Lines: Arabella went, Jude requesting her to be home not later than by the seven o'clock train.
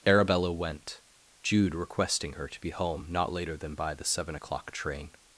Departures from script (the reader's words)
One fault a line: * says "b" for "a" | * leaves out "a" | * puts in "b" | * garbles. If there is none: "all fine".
all fine